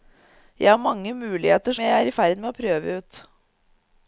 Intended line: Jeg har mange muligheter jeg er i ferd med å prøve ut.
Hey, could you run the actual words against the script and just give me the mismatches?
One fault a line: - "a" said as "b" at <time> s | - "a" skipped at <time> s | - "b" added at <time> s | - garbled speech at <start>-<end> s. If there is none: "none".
none